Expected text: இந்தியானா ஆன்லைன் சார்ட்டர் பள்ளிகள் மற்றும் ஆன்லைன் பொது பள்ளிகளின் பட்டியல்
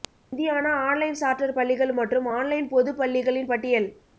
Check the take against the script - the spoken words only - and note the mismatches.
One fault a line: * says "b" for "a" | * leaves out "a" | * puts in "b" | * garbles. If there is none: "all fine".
all fine